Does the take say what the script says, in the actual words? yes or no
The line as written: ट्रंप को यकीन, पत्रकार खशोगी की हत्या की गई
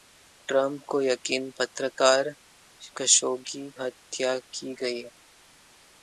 no